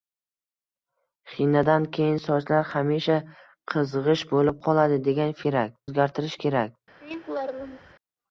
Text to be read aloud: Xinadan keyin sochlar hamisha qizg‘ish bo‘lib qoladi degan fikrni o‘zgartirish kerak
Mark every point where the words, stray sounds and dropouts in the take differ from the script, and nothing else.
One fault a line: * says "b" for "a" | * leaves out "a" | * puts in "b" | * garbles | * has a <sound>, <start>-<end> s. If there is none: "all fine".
* says "kerak" for "fikrni"
* has a laugh, 7.0-7.9 s